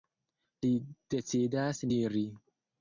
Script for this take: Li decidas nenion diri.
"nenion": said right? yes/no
no